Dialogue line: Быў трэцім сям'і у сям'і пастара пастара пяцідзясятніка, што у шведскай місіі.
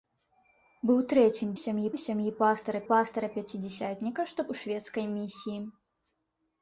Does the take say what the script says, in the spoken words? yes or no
yes